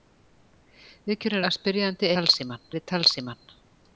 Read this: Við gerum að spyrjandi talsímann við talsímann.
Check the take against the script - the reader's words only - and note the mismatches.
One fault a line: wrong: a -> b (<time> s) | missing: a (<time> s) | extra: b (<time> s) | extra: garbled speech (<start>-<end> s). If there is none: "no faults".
no faults